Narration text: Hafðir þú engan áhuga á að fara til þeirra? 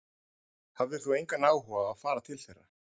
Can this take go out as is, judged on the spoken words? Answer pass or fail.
pass